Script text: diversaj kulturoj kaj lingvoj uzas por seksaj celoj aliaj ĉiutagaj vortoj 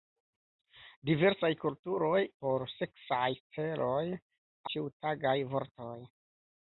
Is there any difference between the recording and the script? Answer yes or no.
yes